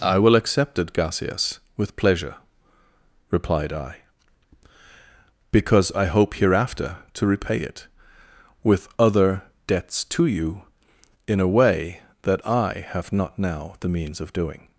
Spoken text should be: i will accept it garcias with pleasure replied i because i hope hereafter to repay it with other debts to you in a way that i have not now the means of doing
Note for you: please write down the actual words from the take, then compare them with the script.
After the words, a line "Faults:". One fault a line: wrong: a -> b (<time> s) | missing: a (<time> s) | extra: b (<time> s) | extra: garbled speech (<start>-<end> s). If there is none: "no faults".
i will accept it garcias with pleasure replied i because i hope hereafter to repay it with other debts to you in a way that i have not now the means of doing
Faults:
no faults